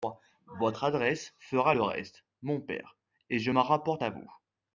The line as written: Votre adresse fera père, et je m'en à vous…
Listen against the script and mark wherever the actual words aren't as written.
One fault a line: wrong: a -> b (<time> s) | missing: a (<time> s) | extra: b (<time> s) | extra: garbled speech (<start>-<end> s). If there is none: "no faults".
extra: le reste mon (1.7 s)
extra: rapporte (3.6 s)